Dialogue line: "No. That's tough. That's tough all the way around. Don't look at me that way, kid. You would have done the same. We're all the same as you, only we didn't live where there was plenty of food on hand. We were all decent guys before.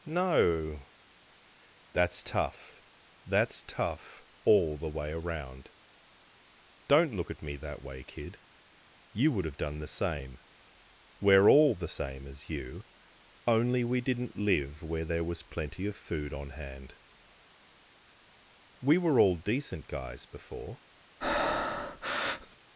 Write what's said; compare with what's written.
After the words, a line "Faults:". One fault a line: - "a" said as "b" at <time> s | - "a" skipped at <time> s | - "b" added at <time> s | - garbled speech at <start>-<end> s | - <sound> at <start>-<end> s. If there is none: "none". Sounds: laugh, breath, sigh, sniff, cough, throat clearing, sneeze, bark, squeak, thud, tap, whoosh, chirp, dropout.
"No. That's tough. That's tough all the way around. Don't look at me that way, kid. You would have done the same. We're all the same as you, only we didn't live where there was plenty of food on hand. We were all decent guys before.
Faults:
- breath at 21.2-22.6 s